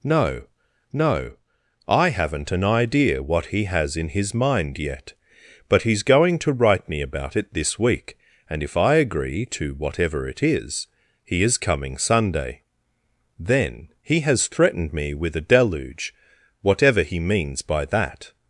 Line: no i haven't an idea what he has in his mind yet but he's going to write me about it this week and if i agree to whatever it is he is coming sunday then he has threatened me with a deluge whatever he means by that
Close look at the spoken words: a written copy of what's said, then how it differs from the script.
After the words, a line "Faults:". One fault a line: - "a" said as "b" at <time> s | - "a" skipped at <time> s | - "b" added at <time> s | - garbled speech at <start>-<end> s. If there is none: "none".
no no i haven't an idea what he has in his mind yet but he's going to write me about it this week and if i agree to whatever it is he is coming sunday then he has threatened me with a deluge whatever he means by that
Faults:
- "no" added at 0.9 s